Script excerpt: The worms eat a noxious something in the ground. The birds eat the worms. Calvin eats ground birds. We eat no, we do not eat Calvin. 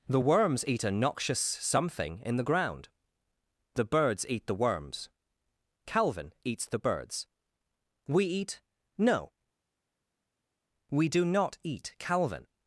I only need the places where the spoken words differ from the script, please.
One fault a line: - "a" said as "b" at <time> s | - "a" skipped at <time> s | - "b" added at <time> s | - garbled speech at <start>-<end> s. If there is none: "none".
- "ground" said as "the" at 6.7 s